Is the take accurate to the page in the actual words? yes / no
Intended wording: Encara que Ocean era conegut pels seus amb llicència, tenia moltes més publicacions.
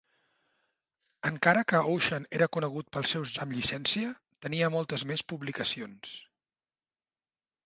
yes